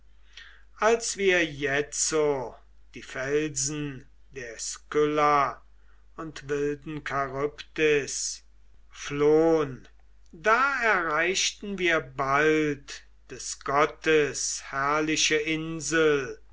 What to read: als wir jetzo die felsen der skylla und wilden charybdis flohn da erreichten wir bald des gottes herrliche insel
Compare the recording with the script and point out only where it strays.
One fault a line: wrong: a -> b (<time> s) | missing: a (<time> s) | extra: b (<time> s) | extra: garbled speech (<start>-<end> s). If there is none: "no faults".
no faults